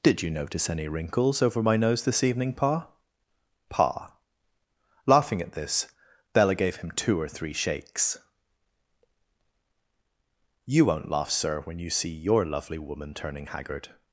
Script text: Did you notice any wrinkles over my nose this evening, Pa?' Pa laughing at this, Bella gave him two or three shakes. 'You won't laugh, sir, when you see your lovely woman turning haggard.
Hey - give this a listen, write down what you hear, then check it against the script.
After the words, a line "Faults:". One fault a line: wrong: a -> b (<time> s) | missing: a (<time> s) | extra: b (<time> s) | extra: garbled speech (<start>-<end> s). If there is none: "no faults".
Did you notice any wrinkles over my nose this evening, Pa?' Pa laughing at this, Bella gave him two or three shakes. 'You won't laugh, sir, when you see your lovely woman turning haggard.
Faults:
no faults